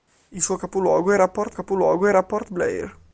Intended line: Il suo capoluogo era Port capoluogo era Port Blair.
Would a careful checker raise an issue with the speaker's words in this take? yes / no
no